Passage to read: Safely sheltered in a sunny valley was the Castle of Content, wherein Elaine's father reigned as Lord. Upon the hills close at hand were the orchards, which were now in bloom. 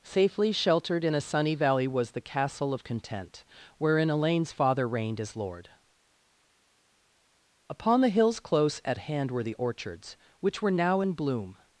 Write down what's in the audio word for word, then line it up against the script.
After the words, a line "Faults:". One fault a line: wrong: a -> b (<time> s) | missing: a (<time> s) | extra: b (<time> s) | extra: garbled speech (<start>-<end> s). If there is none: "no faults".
Safely sheltered in a sunny valley was the Castle of Content, wherein Elaine's father reigned as Lord. Upon the hills close at hand were the orchards, which were now in bloom.
Faults:
no faults